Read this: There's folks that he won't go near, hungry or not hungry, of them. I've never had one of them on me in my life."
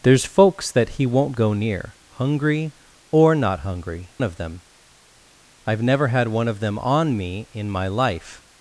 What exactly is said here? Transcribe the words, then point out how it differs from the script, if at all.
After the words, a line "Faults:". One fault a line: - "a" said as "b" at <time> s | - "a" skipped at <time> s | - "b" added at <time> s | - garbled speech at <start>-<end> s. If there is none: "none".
There's folks that he won't go near, hungry or not hungry, of them. I've never had one of them on me in my life."
Faults:
none